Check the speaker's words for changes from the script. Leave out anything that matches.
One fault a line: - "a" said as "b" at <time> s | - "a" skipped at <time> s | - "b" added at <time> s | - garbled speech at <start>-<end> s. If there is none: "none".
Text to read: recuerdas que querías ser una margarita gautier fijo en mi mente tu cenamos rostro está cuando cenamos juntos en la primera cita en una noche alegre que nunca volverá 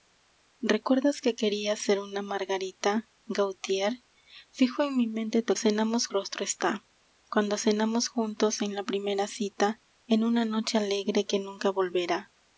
none